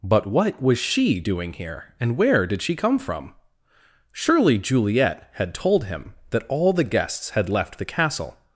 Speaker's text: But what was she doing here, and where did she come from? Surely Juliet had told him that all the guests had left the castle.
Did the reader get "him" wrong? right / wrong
right